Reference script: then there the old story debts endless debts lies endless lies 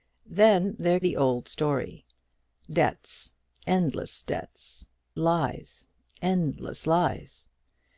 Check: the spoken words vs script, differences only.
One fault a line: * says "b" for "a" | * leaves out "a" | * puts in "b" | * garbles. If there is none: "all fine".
all fine